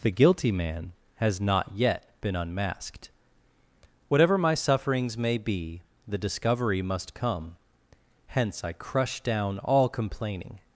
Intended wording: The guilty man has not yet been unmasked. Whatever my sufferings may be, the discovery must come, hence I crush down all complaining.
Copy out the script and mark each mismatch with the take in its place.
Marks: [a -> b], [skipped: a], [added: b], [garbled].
The guilty man has not yet been unmasked. Whatever my sufferings may be, the discovery must come, hence I crush down all complaining.